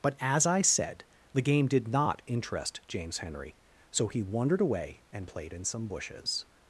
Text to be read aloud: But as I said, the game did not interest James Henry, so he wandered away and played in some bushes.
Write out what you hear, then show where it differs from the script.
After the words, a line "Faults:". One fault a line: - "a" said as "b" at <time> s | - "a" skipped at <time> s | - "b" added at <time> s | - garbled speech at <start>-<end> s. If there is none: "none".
But as I said, the game did not interest James Henry, so he wandered away and played in some bushes.
Faults:
none